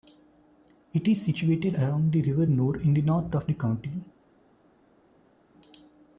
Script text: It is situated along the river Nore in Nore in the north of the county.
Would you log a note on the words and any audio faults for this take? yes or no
yes